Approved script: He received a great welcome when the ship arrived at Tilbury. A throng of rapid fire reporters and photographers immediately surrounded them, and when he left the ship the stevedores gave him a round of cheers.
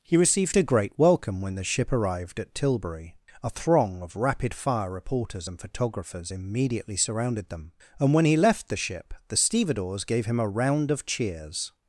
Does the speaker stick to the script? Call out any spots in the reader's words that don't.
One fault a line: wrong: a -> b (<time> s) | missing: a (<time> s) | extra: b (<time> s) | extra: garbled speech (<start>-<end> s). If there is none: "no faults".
no faults